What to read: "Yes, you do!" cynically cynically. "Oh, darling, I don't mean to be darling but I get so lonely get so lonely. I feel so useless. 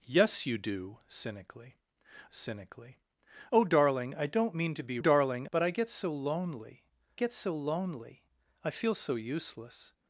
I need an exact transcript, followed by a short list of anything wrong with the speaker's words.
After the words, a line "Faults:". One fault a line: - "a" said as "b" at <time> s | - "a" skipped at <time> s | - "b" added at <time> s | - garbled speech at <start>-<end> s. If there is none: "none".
"Yes, you do!" cynically cynically. "Oh, darling, I don't mean to be darling but I get so lonely get so lonely. I feel so useless.
Faults:
none